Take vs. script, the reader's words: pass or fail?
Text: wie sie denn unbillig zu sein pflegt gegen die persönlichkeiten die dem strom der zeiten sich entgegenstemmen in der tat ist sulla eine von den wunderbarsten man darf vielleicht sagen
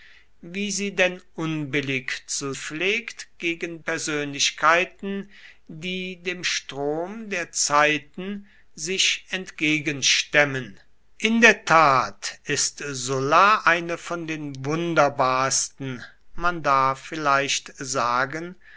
fail